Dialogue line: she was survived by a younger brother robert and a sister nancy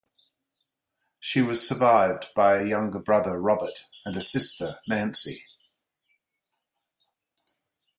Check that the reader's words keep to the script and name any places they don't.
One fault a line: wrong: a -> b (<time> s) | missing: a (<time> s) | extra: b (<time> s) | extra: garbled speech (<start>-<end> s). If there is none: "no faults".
no faults